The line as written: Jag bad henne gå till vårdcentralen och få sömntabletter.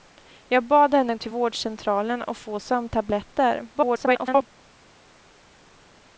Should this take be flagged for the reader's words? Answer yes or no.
yes